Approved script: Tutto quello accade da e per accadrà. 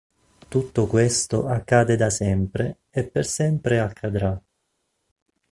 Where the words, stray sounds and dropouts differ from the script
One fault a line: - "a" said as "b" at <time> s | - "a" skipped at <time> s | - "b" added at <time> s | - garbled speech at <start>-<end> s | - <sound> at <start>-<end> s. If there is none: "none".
- "quello" said as "questo" at 0.9 s
- "sempre" added at 2.1 s
- "sempre" added at 3.2 s